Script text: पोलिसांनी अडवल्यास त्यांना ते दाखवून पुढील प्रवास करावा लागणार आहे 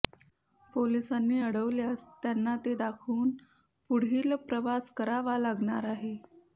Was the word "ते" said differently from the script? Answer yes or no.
no